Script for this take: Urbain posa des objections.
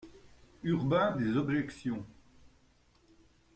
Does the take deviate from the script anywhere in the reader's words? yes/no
yes